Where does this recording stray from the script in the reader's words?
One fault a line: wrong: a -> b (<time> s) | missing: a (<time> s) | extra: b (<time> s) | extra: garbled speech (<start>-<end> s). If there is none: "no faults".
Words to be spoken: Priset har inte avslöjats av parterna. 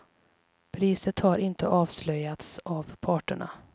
no faults